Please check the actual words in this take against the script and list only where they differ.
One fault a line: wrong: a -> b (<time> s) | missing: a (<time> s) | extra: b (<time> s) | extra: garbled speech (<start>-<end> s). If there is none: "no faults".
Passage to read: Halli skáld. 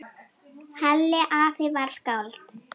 extra: afi var (1.4 s)